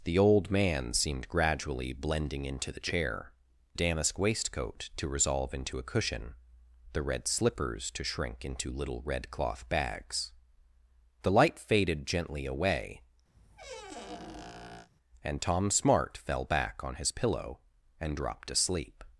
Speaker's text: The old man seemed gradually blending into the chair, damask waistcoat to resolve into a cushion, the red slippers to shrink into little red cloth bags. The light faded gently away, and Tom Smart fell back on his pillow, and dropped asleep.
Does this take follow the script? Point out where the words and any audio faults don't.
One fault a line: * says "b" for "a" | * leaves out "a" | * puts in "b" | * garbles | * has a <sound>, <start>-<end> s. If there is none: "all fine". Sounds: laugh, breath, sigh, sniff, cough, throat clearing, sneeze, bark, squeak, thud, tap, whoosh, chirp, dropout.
* has a squeak, 13.3-14.9 s